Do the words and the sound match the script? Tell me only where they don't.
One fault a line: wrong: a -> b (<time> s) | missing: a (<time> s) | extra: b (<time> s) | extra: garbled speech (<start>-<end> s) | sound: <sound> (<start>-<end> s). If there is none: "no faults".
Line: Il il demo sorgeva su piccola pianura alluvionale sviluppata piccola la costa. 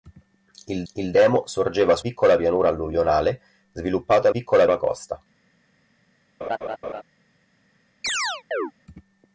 sound: laugh (6.4-7.0 s)
sound: chirp (8.0-8.7 s)